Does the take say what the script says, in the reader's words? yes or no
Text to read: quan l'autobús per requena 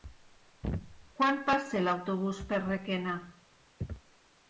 no